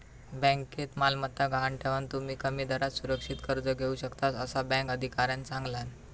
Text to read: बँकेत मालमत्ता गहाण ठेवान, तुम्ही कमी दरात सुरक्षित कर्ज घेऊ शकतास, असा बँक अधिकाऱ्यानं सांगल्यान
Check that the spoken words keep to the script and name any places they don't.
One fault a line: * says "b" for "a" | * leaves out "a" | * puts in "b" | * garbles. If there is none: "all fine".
all fine